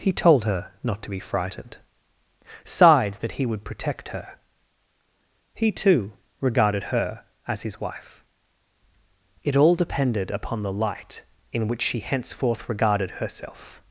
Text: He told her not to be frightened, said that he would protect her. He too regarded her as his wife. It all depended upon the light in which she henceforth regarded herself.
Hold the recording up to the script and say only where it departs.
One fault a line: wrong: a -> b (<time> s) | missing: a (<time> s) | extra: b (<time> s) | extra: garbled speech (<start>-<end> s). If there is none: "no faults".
wrong: said -> sighed (2.6 s)